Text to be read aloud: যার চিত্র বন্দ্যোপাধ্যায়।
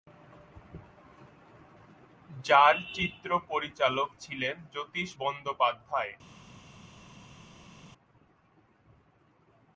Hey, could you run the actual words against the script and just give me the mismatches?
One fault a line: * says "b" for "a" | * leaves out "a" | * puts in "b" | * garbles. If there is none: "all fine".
* puts in "পরিচালক ছিলেন জ্যোতিষ"